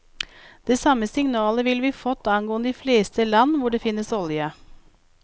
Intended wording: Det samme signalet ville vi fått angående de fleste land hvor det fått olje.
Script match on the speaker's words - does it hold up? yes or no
no